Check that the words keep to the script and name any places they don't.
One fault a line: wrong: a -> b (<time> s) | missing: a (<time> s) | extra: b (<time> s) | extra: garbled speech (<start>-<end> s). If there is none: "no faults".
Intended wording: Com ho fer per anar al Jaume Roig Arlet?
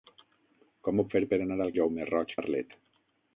no faults